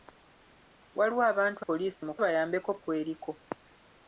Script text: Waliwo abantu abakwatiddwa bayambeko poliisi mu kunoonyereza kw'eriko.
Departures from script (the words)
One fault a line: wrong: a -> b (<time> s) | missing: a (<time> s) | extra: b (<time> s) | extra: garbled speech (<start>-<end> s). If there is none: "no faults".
missing: abakwatiddwa bayambeko (1.6 s)
wrong: kunoonyereza -> bayambeko (2.2 s)